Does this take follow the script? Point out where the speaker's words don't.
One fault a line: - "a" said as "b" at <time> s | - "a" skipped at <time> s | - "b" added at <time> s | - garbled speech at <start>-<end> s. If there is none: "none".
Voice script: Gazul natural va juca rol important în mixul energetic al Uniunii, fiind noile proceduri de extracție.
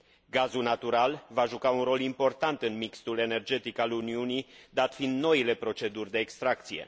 - "un" added at 1.7 s
- "dat" added at 4.7 s